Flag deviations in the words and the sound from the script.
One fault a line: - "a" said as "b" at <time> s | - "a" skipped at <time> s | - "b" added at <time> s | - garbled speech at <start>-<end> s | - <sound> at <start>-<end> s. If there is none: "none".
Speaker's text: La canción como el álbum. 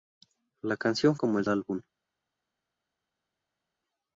none